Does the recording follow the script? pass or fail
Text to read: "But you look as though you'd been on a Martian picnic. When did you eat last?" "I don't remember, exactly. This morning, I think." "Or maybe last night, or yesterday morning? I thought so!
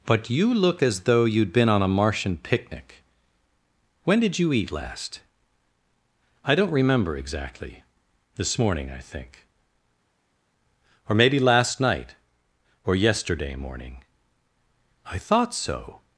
pass